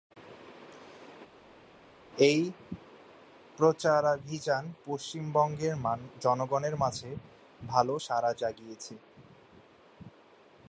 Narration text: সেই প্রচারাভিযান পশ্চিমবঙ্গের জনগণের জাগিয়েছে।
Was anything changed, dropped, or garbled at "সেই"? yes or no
yes